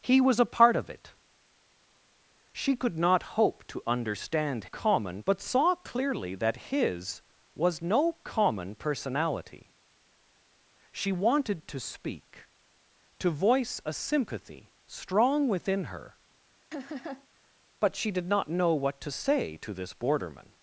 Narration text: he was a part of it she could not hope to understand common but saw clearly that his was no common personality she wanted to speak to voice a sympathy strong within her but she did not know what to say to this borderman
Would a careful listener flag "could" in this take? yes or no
no